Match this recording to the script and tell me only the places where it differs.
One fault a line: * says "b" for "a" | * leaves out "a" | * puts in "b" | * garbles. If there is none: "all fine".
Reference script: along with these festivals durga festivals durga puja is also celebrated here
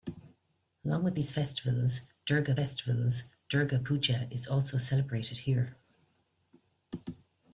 all fine